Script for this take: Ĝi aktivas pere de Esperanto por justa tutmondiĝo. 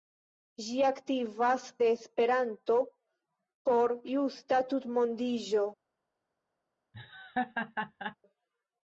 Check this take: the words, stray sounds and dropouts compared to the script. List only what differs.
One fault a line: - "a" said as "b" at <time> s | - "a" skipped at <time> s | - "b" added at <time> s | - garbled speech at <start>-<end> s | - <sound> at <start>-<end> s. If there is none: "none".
- "pere" skipped at 1.6 s
- laugh at 6.9-8.2 s